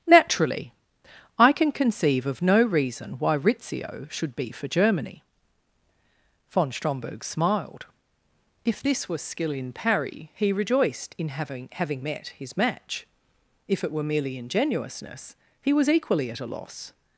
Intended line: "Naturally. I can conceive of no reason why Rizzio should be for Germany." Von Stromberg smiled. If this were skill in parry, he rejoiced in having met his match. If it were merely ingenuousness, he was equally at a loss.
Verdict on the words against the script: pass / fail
fail